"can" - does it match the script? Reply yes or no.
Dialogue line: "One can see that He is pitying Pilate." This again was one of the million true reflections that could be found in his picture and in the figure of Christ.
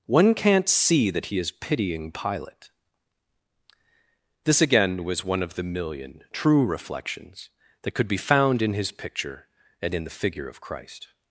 no